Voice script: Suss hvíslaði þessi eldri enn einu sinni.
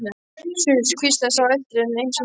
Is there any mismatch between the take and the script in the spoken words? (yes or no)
yes